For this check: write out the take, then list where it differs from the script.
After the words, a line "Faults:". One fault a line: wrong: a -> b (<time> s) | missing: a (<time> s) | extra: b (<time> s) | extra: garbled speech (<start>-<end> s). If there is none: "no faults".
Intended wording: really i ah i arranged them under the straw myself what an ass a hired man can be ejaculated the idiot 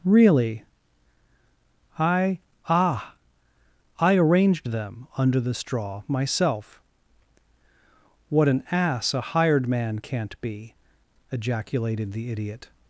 really i ah i arranged them under the straw myself what an ass a hired man can't be ejaculated the idiot
Faults:
wrong: can -> can't (10.0 s)